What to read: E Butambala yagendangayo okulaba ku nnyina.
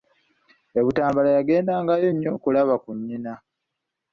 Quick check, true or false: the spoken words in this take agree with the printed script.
false